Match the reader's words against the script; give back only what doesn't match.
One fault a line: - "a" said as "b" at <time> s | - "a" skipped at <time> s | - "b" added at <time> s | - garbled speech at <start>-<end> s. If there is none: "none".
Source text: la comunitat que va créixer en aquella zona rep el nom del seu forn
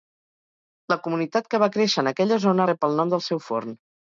none